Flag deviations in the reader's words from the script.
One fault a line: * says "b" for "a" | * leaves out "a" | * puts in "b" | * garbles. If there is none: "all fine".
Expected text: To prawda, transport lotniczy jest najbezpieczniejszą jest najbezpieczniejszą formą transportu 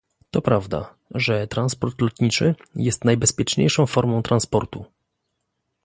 * puts in "że"
* leaves out "jest najbezpieczniejszą"